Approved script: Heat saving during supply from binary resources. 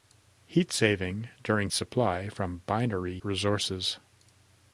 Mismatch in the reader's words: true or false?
false